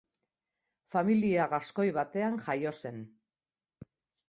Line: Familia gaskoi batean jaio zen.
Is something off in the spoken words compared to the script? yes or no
no